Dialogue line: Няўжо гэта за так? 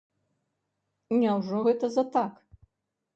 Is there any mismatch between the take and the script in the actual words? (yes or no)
no